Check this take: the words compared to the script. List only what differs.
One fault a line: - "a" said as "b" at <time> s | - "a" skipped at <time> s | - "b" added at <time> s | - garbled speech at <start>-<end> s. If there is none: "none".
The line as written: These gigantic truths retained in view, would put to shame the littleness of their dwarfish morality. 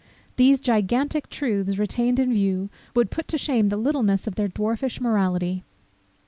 none